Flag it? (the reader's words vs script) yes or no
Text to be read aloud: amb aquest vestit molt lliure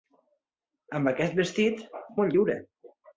no